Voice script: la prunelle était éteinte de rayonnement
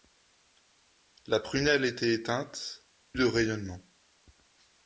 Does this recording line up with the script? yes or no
yes